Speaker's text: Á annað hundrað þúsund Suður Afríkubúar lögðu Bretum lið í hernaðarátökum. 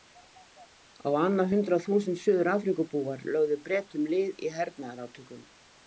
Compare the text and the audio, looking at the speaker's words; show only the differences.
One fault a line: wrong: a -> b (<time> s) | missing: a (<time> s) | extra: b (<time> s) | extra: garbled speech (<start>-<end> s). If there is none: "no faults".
no faults